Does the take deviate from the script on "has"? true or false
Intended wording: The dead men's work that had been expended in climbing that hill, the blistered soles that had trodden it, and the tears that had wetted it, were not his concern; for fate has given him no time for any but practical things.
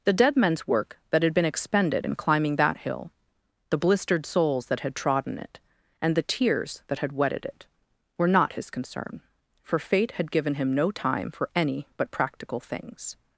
true